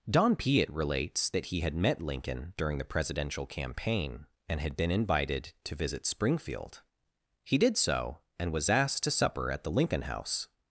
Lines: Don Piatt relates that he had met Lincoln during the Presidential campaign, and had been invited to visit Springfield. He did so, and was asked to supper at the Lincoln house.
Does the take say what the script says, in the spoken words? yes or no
yes